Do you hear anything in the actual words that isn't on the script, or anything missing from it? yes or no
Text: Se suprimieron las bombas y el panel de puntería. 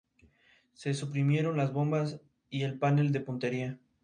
no